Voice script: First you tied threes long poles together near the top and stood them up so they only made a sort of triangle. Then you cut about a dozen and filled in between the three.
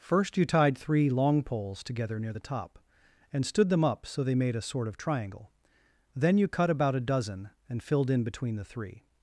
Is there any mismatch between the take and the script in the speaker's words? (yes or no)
yes